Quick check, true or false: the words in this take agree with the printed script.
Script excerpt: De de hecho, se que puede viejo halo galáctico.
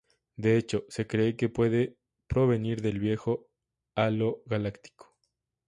false